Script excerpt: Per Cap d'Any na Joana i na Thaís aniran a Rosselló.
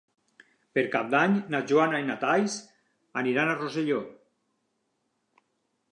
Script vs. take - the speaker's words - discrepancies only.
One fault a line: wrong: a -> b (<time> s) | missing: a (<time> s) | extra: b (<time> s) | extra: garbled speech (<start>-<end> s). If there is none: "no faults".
no faults